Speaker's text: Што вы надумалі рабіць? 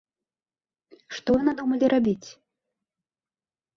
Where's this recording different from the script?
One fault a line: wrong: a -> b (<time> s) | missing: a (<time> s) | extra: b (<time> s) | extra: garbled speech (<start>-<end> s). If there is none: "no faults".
no faults